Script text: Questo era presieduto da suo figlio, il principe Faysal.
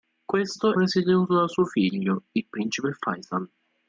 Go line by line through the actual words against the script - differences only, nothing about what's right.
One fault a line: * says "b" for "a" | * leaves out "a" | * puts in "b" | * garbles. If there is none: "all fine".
* leaves out "era"